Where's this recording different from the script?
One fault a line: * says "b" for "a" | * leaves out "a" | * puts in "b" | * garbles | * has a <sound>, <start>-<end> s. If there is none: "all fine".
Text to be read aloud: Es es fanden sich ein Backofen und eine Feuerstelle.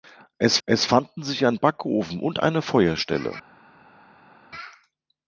all fine